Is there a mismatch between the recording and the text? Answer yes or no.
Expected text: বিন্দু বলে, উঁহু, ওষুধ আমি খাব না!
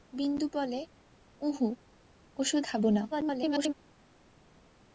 yes